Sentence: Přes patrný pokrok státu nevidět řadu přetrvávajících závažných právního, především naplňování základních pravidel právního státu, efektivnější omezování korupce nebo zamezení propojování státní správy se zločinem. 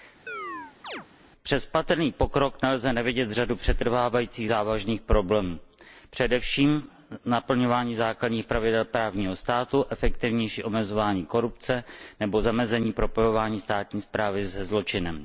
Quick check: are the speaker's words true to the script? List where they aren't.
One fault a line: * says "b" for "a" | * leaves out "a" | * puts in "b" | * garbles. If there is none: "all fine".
* says "nelze" for "státu"
* says "problémů" for "právního"